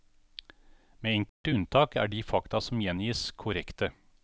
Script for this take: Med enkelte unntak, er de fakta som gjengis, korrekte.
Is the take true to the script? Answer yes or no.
yes